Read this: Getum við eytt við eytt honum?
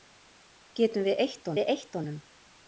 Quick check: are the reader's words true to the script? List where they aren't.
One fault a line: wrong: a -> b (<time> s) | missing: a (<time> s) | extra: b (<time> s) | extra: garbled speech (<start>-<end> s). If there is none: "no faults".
no faults